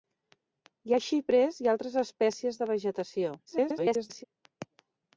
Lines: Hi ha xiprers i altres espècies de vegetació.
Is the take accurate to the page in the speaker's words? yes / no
no